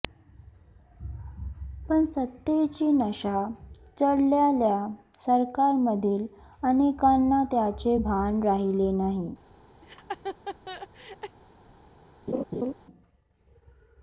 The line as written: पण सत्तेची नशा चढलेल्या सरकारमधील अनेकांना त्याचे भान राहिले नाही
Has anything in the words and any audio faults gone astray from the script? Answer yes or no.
yes